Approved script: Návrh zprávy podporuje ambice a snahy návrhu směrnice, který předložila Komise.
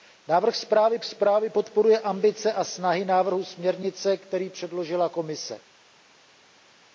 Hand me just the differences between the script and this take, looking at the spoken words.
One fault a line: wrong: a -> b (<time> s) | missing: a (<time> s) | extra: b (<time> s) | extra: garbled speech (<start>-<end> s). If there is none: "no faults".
extra: zprávy (1.0 s)